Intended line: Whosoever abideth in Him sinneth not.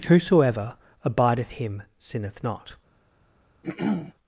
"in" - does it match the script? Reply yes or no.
no